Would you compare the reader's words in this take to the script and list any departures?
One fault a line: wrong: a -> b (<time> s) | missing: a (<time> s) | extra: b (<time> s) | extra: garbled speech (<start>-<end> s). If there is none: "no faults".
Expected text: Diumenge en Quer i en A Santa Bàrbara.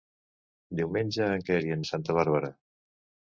no faults